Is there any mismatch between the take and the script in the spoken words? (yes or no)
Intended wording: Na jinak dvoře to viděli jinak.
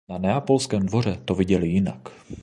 yes